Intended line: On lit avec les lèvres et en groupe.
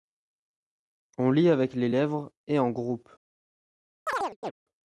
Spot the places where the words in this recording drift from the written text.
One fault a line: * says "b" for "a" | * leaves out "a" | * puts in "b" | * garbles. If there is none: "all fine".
all fine